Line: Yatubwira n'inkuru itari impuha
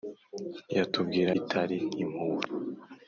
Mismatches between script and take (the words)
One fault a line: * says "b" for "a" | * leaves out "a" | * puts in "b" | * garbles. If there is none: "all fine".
* leaves out "n'inkuru"